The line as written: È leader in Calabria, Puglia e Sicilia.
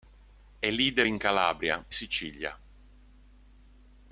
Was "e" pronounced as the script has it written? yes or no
no